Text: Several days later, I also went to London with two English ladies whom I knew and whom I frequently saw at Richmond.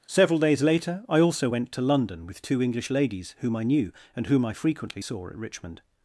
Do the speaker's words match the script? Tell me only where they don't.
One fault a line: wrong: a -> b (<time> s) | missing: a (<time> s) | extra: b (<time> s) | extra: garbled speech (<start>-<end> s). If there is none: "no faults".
no faults